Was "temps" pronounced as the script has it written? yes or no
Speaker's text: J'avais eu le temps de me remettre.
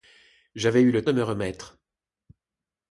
no